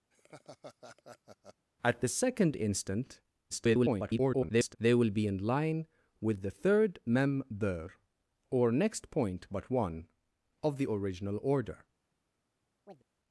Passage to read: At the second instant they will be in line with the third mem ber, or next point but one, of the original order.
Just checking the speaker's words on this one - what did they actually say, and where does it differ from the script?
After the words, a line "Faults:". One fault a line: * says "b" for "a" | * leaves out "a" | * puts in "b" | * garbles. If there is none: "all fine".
At the second instant [garbled] they will be in line with the third mem ber, or next point but one, of the original order.
Faults:
* garbles